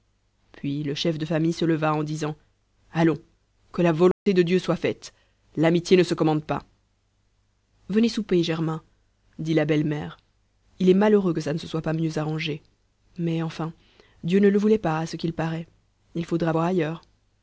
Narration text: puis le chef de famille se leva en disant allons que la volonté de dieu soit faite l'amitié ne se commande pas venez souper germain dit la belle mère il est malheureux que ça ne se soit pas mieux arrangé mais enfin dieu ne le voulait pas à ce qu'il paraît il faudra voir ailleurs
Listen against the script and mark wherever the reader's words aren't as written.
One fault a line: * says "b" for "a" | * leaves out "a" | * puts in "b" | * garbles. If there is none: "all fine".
all fine